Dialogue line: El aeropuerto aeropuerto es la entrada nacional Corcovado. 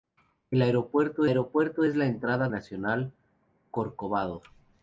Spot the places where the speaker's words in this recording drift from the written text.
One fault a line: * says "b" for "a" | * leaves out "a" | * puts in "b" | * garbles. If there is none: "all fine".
all fine